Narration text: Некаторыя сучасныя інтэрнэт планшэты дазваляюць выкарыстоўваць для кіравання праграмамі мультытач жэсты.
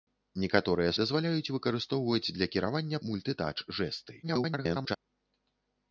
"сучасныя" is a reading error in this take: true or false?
true